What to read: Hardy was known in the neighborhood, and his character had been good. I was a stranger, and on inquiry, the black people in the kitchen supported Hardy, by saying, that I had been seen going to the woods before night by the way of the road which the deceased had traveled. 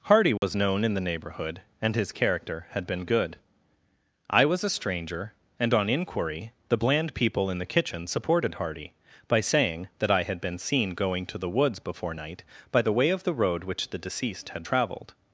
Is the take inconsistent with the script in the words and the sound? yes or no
yes